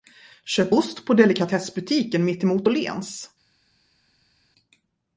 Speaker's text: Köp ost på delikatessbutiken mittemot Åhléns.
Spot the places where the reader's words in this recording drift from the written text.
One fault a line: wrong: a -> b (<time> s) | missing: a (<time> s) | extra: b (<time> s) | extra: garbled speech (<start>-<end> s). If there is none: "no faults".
no faults